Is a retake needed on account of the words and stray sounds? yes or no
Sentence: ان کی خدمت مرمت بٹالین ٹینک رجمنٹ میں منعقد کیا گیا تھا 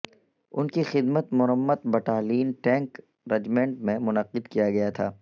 no